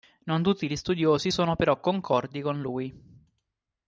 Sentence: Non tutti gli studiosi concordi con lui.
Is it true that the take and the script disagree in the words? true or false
true